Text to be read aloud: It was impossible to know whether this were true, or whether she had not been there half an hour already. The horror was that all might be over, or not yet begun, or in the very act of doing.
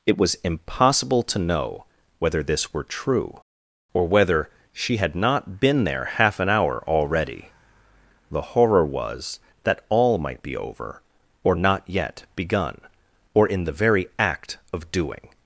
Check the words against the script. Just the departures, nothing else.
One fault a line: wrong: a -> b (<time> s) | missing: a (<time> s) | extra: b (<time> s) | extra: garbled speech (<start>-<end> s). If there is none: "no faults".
no faults